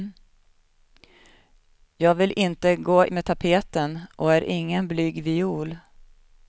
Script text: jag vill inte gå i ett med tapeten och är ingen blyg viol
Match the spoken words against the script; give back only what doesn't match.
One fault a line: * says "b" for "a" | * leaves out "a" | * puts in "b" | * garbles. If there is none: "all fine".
* leaves out "i ett"